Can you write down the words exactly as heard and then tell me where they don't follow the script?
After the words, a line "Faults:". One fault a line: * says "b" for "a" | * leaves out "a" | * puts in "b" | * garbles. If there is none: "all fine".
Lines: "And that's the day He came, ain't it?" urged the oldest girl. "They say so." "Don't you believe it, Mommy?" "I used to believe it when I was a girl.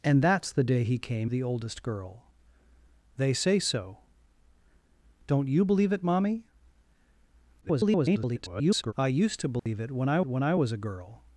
"And that's the day He came, the oldest girl. "They say so." "Don't you believe it, Mommy?" [garbled] "I used to believe it when I when I was a girl.
Faults:
* leaves out "ain't it urged"
* garbles
* puts in "when I"